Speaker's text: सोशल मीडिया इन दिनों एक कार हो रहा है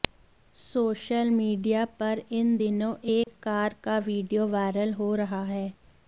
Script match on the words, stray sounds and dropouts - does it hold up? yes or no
no